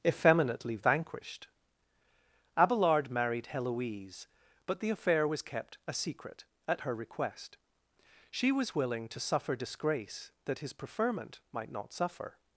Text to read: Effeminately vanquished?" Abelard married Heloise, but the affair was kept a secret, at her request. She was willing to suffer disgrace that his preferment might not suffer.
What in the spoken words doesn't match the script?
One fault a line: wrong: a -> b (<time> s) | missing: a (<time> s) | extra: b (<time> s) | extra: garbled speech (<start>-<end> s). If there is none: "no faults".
no faults